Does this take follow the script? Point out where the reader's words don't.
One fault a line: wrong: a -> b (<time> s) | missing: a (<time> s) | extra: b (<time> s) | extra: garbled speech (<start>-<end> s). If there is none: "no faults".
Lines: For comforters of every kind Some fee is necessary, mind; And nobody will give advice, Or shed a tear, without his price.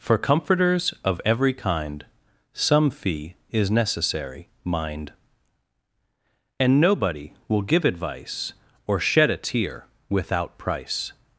missing: his (10.6 s)